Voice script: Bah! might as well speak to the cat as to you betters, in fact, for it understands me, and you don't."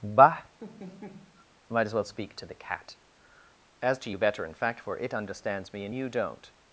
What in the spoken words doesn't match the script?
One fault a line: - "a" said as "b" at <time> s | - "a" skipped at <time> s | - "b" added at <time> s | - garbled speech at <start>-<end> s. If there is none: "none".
- "betters" said as "better" at 4.2 s